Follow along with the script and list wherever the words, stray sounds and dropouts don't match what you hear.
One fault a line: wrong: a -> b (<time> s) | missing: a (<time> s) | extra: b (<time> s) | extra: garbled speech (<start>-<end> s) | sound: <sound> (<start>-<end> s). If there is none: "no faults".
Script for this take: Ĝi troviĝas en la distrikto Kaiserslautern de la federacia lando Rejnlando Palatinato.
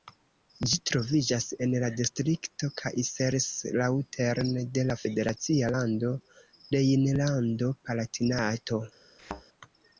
sound: thud (9.2-9.4 s)